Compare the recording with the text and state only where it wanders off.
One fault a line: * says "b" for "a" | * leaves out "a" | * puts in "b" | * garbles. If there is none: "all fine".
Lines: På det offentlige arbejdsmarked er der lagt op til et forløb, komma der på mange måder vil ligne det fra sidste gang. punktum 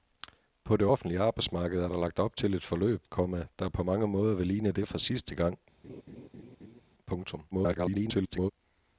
* garbles